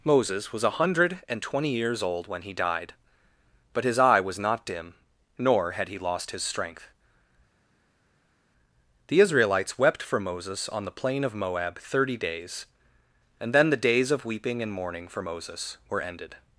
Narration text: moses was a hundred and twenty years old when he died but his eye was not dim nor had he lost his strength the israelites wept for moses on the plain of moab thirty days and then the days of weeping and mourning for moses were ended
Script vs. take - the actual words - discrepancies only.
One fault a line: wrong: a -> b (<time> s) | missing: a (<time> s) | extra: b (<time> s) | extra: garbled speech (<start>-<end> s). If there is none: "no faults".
no faults